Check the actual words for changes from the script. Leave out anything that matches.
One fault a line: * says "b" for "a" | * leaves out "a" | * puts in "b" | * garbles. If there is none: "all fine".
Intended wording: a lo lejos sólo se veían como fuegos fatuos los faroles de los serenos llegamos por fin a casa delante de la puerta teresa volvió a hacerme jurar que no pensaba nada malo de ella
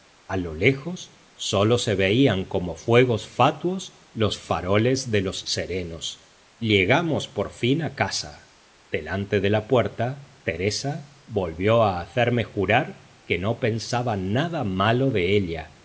all fine